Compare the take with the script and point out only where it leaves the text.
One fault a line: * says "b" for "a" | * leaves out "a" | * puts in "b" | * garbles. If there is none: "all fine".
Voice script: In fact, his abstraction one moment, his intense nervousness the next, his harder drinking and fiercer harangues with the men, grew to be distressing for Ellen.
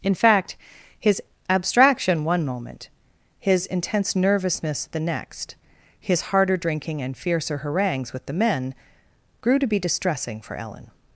all fine